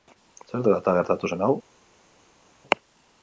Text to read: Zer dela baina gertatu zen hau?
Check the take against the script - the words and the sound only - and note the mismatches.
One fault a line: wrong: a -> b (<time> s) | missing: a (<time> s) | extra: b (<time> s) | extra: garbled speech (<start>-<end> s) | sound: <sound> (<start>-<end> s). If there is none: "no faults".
wrong: baina -> eta (0.8 s)